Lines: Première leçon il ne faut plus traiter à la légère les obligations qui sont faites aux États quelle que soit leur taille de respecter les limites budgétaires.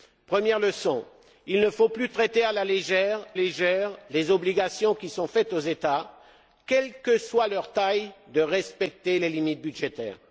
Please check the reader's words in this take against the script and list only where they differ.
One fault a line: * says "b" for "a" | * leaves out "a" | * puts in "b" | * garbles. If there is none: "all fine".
* puts in "légère"